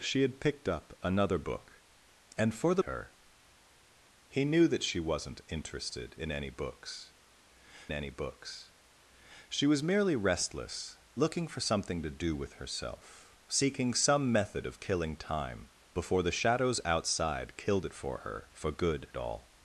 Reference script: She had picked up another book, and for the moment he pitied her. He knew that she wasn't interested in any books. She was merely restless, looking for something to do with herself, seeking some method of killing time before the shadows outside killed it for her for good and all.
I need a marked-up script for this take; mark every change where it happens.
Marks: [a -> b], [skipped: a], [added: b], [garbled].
She had picked up another book, and for the [skipped: moment he pitied] her. He knew that she wasn't interested in any books. [added: any books] She was merely restless, looking for something to do with herself, seeking some method of killing time before the shadows outside killed it for her for good [skipped: and] all.